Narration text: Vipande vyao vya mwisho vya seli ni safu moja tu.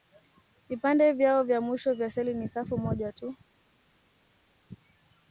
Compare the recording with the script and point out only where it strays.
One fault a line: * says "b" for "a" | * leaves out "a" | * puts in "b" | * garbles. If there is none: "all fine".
all fine